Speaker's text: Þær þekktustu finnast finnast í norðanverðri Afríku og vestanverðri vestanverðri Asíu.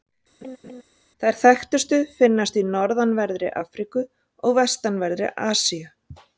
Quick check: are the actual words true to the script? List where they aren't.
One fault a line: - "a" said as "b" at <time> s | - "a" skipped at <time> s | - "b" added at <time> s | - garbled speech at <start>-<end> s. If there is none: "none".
- "finnast" skipped at 2.6 s
- "vestanverðri" skipped at 5.4 s